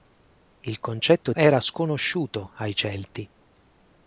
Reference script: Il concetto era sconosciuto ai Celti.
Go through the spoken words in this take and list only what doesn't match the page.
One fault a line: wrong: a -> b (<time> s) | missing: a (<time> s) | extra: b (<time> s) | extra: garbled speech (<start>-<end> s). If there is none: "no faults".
no faults